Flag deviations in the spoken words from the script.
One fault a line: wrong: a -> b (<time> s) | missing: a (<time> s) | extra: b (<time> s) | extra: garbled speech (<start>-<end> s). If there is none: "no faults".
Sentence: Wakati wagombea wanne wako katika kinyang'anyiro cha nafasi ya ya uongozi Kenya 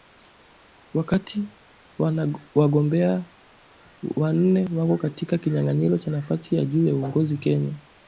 extra: juu (6.7 s)